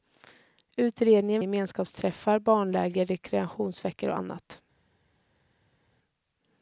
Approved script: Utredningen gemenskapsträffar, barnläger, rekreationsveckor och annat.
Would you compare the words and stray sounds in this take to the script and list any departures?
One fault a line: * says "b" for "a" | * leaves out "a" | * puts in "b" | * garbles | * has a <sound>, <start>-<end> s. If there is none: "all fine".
all fine